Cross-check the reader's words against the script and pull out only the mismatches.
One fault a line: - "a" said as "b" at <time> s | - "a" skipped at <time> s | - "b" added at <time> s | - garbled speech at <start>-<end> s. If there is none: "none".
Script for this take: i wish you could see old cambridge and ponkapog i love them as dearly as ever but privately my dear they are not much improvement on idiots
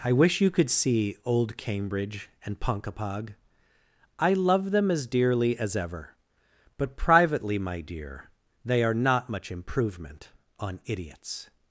none